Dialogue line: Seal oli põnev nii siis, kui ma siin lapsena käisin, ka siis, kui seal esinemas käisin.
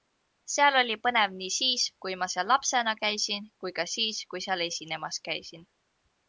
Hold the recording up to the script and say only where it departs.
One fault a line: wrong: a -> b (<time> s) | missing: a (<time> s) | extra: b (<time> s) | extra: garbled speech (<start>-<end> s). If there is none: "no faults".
wrong: siin -> seal (2.4 s)
extra: kui (3.6 s)